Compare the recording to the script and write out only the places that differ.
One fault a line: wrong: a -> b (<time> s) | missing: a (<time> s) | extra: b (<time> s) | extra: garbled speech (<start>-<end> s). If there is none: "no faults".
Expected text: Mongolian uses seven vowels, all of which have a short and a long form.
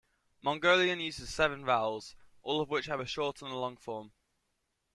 no faults